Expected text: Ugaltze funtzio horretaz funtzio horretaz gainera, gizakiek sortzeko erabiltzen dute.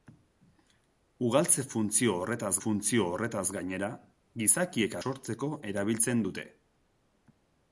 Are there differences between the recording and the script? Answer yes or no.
no